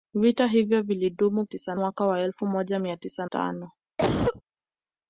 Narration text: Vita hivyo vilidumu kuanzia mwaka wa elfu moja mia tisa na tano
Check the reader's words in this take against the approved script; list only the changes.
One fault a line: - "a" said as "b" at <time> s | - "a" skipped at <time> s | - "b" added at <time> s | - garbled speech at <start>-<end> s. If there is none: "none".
- "kuanzia" said as "tisa" at 1.4 s
- "na" skipped at 3.3 s